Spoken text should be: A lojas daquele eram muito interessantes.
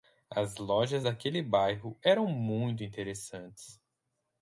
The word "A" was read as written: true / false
false